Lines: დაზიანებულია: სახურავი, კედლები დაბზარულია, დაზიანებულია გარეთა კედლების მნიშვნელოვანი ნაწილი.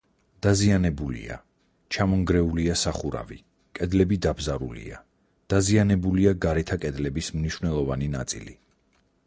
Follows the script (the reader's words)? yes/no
no